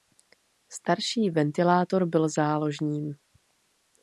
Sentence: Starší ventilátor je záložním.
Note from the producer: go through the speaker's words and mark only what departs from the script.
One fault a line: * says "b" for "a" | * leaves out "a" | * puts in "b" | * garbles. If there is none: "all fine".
* says "byl" for "je"